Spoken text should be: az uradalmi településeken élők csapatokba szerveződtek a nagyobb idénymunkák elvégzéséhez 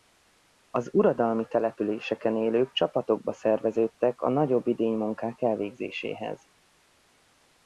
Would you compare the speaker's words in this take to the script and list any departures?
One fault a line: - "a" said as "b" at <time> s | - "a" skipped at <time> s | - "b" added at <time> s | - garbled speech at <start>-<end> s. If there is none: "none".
none